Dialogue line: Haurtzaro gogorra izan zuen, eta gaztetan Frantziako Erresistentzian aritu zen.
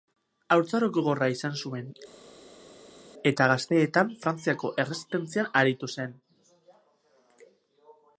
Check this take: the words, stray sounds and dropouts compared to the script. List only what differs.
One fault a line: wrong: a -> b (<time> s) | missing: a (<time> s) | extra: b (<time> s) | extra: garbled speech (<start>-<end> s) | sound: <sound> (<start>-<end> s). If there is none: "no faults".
no faults